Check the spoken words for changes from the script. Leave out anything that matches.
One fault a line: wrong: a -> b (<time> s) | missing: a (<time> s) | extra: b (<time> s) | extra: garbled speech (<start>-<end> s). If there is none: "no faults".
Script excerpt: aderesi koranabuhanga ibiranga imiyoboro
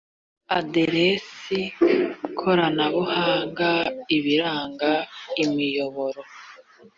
no faults